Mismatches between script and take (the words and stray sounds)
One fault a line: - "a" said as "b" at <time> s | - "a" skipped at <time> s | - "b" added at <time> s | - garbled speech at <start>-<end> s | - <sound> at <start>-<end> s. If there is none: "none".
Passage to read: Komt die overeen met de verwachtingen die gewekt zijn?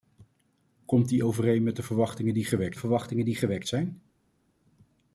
- "verwachtingen die gewekt" added at 2.8 s